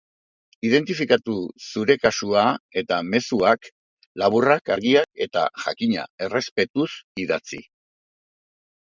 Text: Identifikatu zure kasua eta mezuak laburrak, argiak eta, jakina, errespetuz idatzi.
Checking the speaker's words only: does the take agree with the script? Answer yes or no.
yes